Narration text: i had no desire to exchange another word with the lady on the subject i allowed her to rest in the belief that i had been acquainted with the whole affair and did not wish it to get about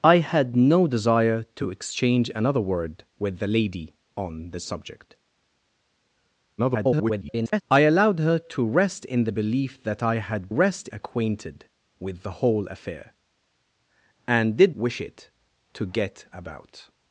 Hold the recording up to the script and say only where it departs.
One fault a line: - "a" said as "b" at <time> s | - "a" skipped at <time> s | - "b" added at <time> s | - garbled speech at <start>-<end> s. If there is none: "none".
- garbled speech at 6.6-7.6 s
- "been" said as "rest" at 10.5 s
- "not" skipped at 14.7 s